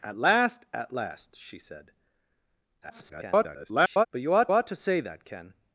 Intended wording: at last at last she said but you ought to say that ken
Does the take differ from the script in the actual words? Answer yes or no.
yes